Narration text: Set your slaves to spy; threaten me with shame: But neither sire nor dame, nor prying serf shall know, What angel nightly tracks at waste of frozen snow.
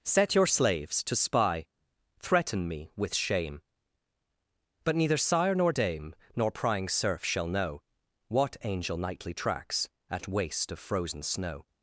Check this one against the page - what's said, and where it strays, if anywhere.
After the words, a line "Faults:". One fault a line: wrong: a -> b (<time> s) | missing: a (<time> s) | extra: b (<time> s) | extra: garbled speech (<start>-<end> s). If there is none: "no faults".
Set your slaves to spy; threaten me with shame: But neither sire nor dame, nor prying serf shall know, What angel nightly tracks at waste of frozen snow.
Faults:
no faults